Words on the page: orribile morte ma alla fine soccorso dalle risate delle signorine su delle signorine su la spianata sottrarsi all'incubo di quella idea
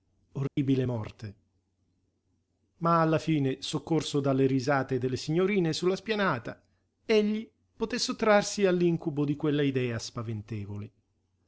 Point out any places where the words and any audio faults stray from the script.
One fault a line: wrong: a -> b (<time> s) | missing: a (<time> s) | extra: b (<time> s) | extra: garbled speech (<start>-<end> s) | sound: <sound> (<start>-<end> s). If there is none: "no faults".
sound: dropout (0.5-0.6 s)
wrong: delle signorine su la spianata -> la spianata egli poté (5.9 s)